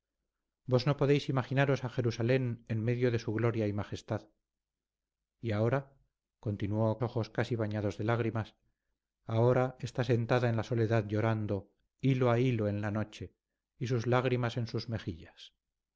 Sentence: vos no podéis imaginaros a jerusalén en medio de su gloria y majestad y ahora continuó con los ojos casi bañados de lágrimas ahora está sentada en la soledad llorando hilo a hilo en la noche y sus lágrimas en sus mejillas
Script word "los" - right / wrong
wrong